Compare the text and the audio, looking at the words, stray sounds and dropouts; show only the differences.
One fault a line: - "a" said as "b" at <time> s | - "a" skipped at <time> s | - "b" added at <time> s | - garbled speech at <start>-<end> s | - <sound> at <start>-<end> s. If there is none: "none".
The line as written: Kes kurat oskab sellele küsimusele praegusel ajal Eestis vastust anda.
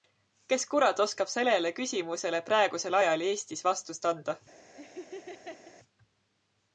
- laugh at 4.8-5.8 s